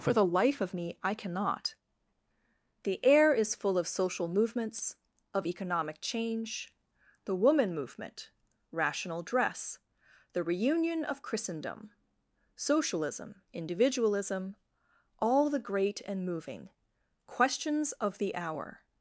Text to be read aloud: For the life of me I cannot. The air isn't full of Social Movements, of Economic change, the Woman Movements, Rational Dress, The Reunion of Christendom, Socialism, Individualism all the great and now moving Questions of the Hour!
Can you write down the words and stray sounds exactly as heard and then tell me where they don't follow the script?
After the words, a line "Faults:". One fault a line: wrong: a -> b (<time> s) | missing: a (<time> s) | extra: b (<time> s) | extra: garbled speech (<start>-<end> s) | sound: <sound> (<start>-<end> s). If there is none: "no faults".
For the life of me I cannot. The air is full of Social Movements, of Economic change, the Woman Movement, Rational Dress, The Reunion of Christendom, Socialism, Individualism all the great and moving Questions of the Hour!
Faults:
wrong: isn't -> is (3.3 s)
wrong: Movements -> Movement (7.7 s)
missing: now (16.2 s)